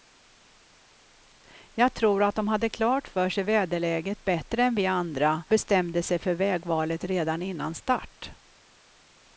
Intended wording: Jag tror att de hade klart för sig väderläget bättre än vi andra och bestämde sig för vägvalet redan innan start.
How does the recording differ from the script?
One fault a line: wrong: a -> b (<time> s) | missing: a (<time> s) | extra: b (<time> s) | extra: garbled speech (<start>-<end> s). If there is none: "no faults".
missing: och (5.4 s)